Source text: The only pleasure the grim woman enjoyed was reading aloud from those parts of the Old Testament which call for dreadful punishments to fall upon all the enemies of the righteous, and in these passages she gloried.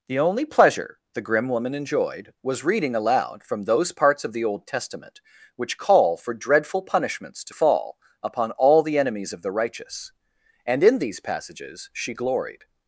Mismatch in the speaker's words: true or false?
false